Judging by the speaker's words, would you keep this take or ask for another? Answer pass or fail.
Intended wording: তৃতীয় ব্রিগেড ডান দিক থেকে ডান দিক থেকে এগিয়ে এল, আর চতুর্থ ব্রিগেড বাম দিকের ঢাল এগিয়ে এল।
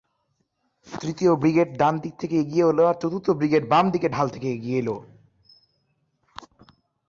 fail